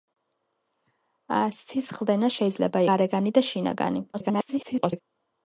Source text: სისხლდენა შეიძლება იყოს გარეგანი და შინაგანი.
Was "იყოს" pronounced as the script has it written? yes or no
no